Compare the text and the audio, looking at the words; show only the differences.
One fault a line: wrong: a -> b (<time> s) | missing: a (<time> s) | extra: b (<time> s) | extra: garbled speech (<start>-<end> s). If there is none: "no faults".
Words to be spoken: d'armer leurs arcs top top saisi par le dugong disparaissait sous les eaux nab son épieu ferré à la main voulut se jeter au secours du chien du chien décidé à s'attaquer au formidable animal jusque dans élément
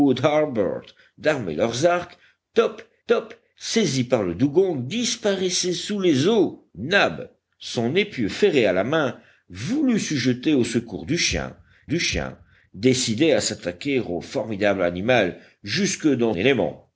no faults